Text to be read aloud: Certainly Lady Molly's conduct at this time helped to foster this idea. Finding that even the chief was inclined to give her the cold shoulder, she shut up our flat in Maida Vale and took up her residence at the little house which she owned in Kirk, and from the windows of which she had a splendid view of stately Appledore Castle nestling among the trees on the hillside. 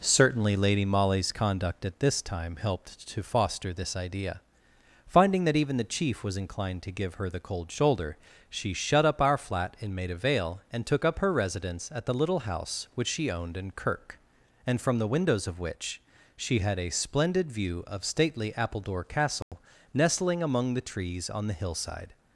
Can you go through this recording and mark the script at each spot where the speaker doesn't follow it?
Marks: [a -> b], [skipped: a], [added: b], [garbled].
Certainly Lady Molly's conduct at this time helped to foster this idea. Finding that even the chief was inclined to give her the cold shoulder, she shut up our flat in Maida Vale and took up her residence at the little house which she owned in Kirk, and from the windows of which she had a splendid view of stately Appledore Castle nestling among the trees on the hillside.